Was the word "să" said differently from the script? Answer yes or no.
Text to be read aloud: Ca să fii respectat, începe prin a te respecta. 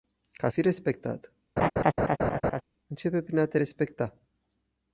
yes